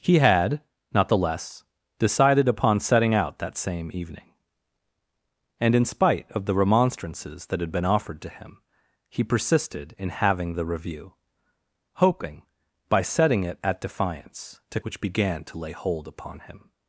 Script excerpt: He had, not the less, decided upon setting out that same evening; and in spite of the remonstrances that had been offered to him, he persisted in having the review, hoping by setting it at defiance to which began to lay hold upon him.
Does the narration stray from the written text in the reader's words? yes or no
no